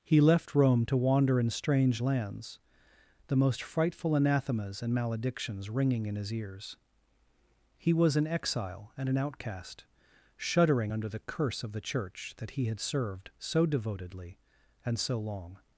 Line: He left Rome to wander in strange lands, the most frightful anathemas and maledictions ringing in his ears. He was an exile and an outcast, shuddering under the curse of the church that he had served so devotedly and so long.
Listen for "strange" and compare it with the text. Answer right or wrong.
right